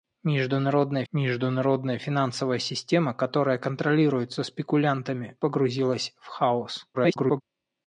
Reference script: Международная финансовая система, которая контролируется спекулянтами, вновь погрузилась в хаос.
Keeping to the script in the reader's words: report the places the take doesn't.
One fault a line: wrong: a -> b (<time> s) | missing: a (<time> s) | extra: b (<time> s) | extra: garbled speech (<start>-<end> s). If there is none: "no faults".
extra: международная (1.1 s)
missing: вновь (5.4 s)
extra: garbled speech (6.9-7.4 s)